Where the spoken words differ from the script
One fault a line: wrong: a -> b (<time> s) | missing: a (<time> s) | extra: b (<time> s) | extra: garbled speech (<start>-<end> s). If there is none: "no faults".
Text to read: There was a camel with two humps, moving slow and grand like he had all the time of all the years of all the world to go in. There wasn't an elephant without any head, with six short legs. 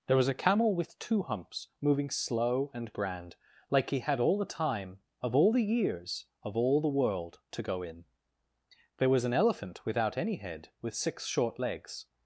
wrong: wasn't -> was (9.1 s)